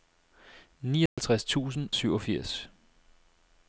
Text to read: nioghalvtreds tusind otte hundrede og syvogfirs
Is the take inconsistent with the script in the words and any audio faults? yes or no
yes